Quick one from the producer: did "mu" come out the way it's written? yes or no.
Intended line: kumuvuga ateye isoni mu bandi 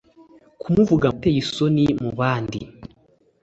yes